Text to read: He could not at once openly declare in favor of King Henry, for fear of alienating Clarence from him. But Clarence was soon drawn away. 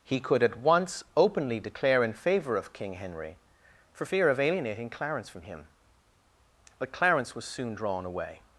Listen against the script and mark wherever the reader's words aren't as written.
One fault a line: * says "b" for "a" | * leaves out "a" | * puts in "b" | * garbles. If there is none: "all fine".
* leaves out "not"